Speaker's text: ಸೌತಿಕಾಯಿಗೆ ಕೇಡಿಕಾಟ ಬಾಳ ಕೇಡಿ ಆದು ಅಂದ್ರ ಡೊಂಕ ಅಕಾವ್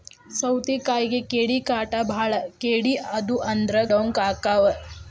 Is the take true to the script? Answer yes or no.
yes